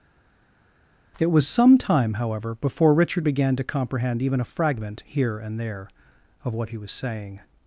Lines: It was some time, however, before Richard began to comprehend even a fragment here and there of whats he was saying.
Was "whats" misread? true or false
true